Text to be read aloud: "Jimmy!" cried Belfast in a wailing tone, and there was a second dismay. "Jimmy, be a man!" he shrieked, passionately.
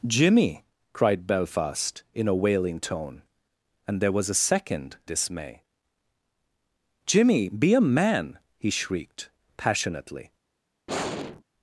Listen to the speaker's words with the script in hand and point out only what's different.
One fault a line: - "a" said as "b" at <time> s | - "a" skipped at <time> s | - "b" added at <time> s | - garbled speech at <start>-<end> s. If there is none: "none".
none